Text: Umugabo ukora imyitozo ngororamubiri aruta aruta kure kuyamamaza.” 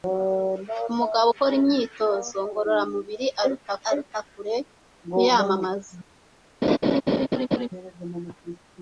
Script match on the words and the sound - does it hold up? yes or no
no